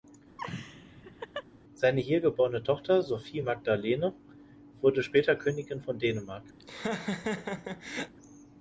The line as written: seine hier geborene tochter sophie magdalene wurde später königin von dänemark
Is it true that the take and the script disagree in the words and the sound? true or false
true